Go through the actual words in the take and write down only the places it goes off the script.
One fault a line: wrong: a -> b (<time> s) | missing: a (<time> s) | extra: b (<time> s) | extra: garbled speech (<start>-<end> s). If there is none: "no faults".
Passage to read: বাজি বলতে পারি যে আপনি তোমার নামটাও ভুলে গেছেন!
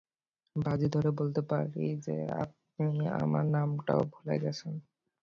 extra: ধরে (0.9 s)
wrong: তোমার -> আমার (3.2 s)